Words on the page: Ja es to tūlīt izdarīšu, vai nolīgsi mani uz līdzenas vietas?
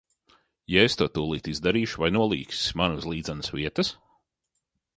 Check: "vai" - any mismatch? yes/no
no